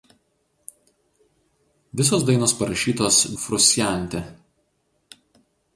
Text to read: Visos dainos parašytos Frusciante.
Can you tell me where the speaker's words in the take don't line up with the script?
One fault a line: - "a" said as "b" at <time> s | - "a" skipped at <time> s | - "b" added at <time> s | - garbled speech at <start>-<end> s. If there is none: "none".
none